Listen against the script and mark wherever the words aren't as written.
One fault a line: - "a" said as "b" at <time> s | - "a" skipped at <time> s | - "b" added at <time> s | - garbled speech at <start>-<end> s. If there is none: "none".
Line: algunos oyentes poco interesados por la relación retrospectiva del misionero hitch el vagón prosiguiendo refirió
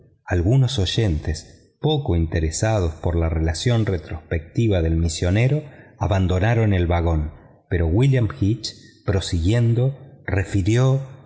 - "hitch" said as "abandonaron" at 6.0 s
- "pero william hitch" added at 7.7 s